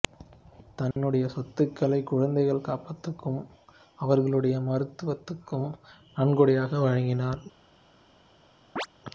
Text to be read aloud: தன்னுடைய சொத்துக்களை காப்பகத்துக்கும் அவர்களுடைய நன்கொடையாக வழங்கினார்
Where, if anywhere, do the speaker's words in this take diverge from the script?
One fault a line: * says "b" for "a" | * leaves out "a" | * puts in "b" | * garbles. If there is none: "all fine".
* puts in "குழந்தைகள்"
* puts in "மருத்துவத்துக்கும்"